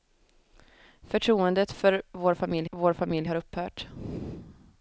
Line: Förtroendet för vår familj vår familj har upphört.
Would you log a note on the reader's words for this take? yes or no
no